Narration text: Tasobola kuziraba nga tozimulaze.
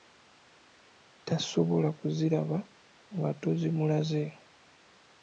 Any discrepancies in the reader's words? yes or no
no